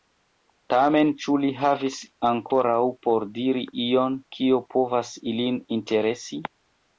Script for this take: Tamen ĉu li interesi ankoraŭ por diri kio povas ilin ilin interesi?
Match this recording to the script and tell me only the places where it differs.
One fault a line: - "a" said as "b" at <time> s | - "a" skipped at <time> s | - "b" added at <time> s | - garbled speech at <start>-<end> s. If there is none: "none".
- "interesi" said as "havis" at 1.6 s
- "ion" added at 3.9 s
- "ilin" skipped at 5.6 s